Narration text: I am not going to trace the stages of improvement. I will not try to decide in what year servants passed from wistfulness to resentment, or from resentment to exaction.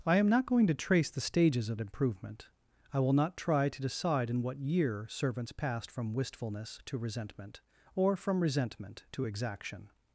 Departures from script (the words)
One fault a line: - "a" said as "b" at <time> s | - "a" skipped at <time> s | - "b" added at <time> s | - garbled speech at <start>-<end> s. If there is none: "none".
none